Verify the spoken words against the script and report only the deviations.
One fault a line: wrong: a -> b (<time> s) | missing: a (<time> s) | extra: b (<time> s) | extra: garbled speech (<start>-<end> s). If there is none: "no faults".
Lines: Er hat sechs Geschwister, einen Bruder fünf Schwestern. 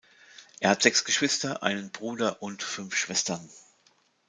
extra: und (2.4 s)